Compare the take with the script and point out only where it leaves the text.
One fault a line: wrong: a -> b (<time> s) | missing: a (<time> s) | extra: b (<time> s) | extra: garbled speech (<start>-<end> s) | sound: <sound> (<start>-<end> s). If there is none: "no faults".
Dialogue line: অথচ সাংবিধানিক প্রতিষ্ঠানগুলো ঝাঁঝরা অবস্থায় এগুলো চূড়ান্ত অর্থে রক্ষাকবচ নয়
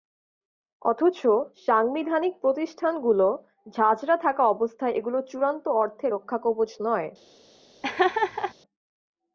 extra: থাকা (4.2 s)
sound: laugh (7.8-8.5 s)